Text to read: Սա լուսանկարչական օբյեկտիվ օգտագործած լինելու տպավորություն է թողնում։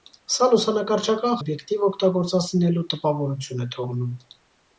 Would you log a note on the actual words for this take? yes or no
no